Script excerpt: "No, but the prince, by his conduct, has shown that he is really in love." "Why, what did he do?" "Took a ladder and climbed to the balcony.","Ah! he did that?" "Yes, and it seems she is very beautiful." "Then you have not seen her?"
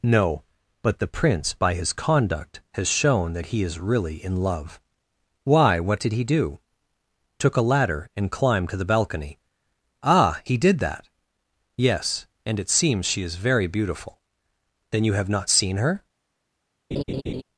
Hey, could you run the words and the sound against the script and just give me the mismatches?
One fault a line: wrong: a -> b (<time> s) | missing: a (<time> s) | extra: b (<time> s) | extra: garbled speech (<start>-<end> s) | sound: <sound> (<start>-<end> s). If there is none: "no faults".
sound: laugh (16.9-17.4 s)